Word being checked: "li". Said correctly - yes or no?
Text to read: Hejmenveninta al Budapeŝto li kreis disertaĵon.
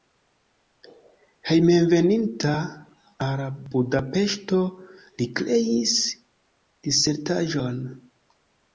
yes